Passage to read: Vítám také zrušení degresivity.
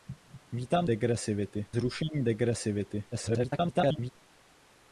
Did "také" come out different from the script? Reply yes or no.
yes